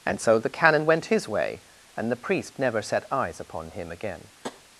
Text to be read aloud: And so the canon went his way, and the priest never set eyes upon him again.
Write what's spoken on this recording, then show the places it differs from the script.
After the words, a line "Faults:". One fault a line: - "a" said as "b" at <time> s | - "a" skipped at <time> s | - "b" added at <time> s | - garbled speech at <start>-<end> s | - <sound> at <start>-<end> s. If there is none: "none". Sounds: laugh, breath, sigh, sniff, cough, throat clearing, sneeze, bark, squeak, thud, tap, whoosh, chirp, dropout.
And so the canon went his way, and the priest never set eyes upon him again.
Faults:
- tap at 4.4-4.6 s